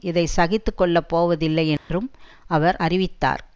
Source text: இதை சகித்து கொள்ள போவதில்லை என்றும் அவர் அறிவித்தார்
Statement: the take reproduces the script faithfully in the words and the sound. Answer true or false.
false